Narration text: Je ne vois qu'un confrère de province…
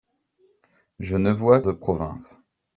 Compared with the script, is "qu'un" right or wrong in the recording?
wrong